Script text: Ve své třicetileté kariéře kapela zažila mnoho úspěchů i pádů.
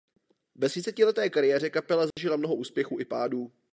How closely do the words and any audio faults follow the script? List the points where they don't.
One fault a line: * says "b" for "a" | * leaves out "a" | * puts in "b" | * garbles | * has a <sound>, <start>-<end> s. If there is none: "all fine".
* leaves out "své"
* has a dropout, 2.1-2.2 s